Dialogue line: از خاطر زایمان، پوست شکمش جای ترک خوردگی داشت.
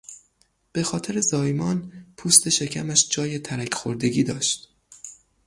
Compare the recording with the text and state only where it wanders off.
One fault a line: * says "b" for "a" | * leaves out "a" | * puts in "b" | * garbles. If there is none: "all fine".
* says "به" for "از"